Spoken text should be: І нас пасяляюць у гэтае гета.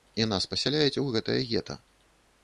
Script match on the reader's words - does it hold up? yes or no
yes